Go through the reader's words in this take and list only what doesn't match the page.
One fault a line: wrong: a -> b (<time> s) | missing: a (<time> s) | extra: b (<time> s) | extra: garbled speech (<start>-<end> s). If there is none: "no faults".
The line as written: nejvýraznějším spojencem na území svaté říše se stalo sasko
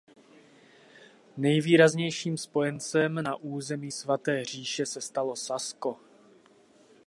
no faults